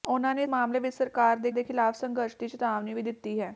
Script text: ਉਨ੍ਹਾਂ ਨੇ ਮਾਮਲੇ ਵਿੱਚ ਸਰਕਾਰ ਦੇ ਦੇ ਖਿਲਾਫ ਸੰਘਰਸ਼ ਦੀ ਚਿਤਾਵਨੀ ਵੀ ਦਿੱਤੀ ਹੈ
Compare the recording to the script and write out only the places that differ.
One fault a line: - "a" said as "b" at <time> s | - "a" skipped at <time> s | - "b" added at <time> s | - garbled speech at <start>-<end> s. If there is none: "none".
none